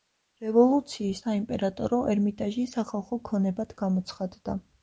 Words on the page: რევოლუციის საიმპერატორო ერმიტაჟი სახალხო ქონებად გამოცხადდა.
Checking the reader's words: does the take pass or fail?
pass